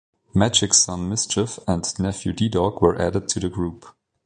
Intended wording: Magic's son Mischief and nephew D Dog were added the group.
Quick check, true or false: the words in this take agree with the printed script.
false